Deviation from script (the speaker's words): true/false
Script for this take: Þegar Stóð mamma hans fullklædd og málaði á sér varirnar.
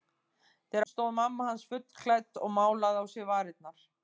false